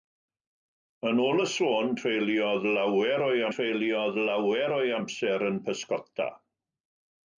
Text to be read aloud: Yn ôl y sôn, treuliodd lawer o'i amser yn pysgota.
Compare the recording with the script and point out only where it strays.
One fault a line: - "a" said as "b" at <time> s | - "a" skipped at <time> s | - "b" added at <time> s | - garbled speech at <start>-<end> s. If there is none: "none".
- "treuliodd lawer o'i" added at 3.6 s